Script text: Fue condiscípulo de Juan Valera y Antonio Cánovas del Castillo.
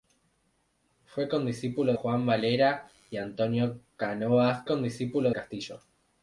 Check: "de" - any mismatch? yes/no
yes